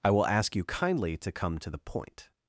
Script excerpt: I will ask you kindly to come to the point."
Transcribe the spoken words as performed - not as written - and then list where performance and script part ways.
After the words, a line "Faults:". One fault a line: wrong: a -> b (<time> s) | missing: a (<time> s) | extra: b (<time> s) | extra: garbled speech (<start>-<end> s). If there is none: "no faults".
I will ask you kindly to come to the point."
Faults:
no faults